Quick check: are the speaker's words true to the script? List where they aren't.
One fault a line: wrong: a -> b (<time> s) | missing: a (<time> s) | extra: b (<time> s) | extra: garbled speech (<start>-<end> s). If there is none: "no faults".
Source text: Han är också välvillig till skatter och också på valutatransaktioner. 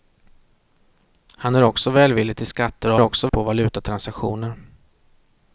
no faults